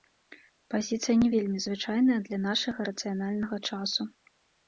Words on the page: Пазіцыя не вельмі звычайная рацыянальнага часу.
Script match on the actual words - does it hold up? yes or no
no